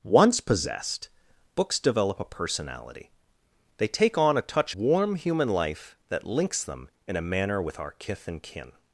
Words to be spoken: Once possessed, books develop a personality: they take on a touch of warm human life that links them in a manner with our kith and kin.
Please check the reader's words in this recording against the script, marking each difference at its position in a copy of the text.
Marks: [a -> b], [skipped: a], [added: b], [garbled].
Once possessed, books develop a personality: they take on a touch [skipped: of] warm human life that links them in a manner with our kith and kin.